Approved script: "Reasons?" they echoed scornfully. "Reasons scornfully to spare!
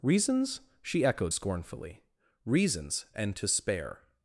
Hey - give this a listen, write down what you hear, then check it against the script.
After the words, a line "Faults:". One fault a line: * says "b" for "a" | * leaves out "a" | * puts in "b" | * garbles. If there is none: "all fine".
"Reasons?" she echoed scornfully. "Reasons and to spare!
Faults:
* says "she" for "they"
* says "and" for "scornfully"